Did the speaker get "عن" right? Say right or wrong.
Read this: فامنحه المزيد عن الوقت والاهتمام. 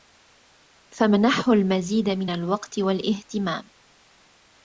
wrong